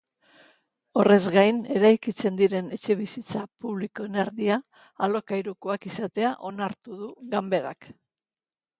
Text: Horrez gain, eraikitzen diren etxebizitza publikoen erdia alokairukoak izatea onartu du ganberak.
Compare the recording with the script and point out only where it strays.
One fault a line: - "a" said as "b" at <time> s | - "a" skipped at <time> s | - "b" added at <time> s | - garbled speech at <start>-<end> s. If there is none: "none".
none